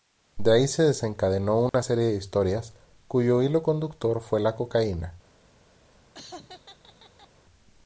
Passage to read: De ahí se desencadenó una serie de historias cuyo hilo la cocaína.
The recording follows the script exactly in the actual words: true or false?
false